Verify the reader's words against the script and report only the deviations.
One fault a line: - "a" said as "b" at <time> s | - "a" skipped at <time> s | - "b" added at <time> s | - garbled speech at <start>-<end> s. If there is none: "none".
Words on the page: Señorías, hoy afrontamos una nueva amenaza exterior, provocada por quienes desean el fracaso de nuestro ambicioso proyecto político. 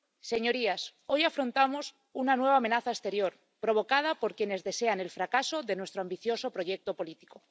none